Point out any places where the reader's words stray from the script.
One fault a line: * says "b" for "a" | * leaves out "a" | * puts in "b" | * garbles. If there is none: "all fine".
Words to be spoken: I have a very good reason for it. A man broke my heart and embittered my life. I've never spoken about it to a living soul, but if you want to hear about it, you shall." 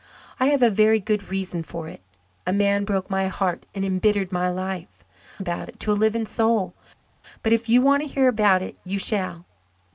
* leaves out "I've never spoken"